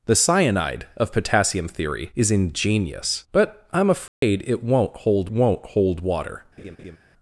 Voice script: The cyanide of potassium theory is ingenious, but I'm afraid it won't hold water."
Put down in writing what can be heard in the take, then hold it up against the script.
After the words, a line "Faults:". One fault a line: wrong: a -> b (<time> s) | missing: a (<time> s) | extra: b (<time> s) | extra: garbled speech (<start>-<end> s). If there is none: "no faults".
The cyanide of potassium theory is ingenious, but I'm afraid it won't hold won't hold water."
Faults:
extra: won't hold (5.3 s)